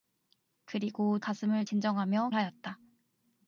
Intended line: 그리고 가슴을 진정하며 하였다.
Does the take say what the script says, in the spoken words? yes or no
yes